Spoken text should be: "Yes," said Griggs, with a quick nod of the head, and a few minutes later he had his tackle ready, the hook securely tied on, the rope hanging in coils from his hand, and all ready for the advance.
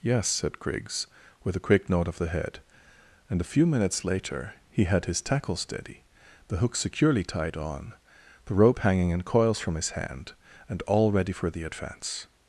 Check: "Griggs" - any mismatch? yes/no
no